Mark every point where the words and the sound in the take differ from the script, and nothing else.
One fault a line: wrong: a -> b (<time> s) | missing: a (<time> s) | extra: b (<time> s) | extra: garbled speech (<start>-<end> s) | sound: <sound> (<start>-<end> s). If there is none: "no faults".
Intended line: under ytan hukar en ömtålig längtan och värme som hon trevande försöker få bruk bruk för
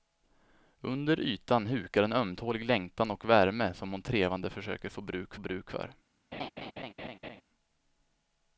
sound: laugh (6.3-7.4 s)